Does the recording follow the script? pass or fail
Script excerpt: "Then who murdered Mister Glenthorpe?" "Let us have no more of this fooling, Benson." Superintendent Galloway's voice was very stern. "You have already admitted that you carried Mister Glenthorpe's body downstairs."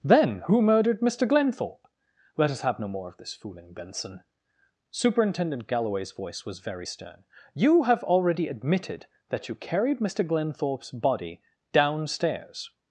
pass